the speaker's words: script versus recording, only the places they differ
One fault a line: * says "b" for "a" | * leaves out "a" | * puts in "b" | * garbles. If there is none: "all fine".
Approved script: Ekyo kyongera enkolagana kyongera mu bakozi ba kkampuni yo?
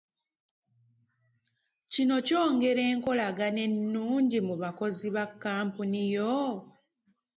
* says "Kino" for "Ekyo"
* says "ennungi" for "kyongera"